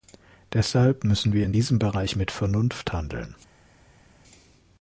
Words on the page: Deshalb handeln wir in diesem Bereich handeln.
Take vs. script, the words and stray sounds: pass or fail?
fail